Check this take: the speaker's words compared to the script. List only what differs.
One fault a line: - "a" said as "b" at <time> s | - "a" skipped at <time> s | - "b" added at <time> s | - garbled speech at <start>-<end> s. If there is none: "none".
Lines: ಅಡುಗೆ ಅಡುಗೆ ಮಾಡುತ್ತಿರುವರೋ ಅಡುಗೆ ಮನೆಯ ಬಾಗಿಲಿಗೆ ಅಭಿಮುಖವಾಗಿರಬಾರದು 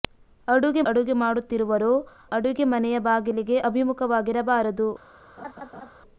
none